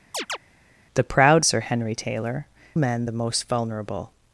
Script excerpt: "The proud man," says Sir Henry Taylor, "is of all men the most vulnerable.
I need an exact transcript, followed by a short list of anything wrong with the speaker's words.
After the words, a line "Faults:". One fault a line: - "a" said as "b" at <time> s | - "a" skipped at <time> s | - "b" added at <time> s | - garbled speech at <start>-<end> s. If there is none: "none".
"The proud Sir Henry Taylor, "men the most vulnerable.
Faults:
- "man says" skipped at 1.5 s
- "is of all" skipped at 2.5 s